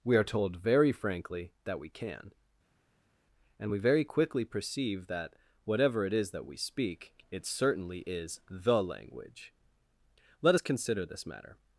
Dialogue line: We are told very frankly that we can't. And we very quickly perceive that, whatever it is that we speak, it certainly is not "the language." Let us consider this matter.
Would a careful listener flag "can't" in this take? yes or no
yes